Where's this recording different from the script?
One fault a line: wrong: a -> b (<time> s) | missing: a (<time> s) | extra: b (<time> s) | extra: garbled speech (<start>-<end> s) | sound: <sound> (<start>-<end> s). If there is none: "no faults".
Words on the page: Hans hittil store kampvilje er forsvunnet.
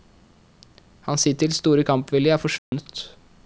sound: dropout (2.6-2.7 s)